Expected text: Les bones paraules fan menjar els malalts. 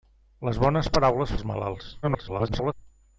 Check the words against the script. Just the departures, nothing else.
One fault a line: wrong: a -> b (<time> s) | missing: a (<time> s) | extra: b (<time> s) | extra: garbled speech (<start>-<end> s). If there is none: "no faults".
missing: fan menjar (1.4 s)
extra: garbled speech (2.0-2.7 s)